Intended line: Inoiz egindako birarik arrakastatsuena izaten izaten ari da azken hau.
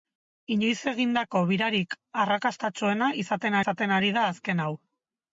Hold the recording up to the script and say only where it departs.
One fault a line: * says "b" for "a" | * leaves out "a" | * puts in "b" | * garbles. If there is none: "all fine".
all fine